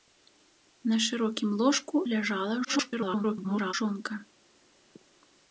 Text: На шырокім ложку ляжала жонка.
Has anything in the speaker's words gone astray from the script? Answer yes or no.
yes